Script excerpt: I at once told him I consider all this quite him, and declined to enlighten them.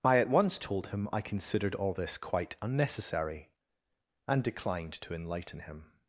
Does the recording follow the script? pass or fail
fail